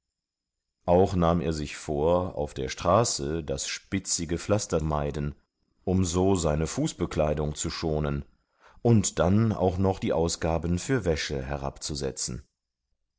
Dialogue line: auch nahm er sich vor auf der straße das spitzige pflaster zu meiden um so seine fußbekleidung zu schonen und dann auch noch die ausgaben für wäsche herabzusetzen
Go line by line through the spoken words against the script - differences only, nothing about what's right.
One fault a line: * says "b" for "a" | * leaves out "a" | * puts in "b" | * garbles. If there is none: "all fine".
* leaves out "zu"